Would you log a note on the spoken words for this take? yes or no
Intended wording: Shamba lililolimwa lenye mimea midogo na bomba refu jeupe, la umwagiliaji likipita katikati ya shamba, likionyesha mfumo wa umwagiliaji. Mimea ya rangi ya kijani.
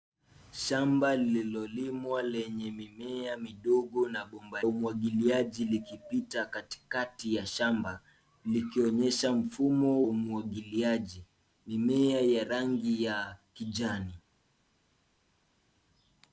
yes